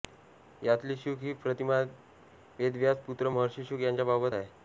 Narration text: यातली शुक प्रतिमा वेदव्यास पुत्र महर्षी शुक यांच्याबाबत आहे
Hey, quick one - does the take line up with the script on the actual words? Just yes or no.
no